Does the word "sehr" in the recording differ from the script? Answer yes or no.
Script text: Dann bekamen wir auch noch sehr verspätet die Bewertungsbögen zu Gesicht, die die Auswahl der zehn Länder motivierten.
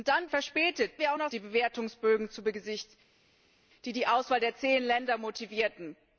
yes